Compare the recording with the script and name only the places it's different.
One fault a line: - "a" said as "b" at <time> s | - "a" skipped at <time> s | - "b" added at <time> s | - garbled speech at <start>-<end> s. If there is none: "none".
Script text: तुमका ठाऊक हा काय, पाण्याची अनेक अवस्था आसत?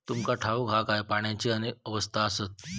none